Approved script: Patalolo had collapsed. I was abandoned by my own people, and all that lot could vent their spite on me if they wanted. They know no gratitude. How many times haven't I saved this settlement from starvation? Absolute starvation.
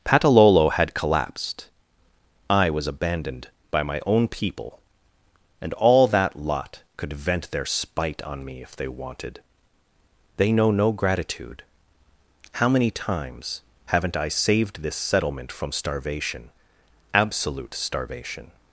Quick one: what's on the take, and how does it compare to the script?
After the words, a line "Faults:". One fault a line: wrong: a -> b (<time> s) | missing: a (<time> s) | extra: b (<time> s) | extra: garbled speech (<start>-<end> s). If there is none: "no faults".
Patalolo had collapsed. I was abandoned by my own people, and all that lot could vent their spite on me if they wanted. They know no gratitude. How many times haven't I saved this settlement from starvation? Absolute starvation.
Faults:
no faults